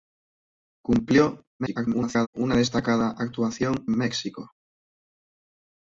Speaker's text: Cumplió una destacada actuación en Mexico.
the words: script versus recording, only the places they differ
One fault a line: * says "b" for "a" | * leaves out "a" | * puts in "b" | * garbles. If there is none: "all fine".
* garbles
* leaves out "en"